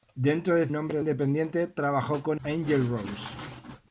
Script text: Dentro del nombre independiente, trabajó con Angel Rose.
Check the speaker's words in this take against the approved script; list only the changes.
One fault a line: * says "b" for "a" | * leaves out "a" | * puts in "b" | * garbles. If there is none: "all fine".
all fine